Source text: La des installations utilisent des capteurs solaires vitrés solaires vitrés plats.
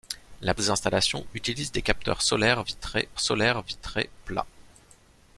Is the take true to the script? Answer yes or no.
yes